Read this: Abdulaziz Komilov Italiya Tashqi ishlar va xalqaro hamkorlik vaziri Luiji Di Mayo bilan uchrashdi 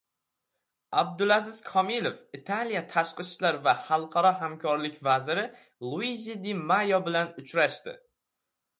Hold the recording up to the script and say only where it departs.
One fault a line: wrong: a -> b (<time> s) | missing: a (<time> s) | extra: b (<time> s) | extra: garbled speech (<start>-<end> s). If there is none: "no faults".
no faults